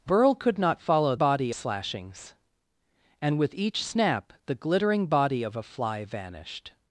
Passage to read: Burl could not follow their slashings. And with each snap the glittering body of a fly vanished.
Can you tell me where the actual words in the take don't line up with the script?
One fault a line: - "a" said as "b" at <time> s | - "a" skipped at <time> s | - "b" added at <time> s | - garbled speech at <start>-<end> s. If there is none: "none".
- "their" said as "body" at 1.2 s